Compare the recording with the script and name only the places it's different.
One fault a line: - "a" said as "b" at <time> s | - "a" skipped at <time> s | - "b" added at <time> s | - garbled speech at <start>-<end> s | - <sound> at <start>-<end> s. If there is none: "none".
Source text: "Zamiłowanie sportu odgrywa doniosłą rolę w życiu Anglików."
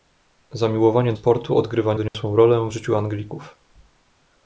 - dropout at 2.1-2.1 s